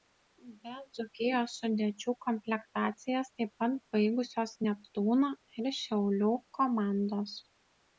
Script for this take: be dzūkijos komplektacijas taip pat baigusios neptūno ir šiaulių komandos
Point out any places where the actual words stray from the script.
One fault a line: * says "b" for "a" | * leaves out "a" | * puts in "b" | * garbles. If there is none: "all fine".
* puts in "sudėčių"